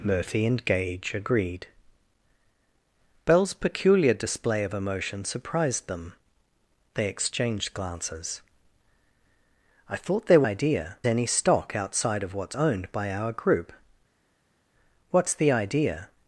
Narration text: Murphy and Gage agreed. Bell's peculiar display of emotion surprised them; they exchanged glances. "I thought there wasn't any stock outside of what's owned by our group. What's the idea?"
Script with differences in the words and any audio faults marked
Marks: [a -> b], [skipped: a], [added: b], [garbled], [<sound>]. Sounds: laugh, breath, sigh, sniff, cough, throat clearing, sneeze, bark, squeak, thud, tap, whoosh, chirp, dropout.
Murphy and Gage agreed. Bell's peculiar display of emotion surprised them; they exchanged glances. "I thought there [wasn't -> idea] any stock outside of what's owned by our group. What's the idea?"